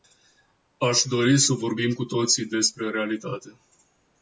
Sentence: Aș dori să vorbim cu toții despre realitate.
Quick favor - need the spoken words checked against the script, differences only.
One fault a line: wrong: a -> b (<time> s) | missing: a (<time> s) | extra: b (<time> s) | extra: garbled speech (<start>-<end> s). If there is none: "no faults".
no faults